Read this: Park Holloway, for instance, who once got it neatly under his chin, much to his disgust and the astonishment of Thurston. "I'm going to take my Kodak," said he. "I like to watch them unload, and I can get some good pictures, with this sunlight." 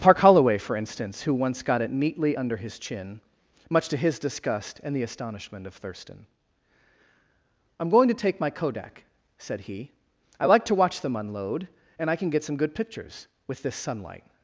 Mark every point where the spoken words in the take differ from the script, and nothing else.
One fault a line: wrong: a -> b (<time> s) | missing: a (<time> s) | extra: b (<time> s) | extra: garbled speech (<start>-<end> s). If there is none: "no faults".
no faults